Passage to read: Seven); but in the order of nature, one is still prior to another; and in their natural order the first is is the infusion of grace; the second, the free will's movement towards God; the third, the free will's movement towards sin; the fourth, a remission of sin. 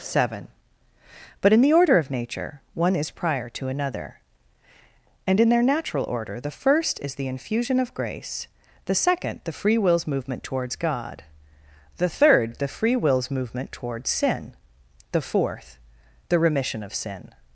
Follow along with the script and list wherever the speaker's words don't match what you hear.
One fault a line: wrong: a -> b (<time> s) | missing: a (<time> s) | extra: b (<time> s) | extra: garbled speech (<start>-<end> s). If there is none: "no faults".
missing: still (3.1 s)
missing: is (7.1 s)
wrong: a -> the (16.3 s)